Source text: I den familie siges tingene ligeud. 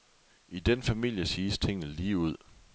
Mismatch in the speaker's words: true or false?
false